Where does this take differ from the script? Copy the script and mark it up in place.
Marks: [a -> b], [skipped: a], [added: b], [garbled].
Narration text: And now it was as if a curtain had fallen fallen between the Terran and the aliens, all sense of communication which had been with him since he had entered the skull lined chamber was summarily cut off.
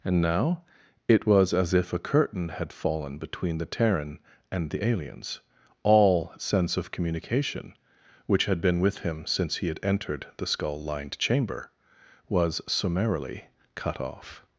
And now it was as if a curtain had fallen [skipped: fallen] between the Terran and the aliens, all sense of communication which had been with him since he had entered the skull lined chamber was summarily cut off.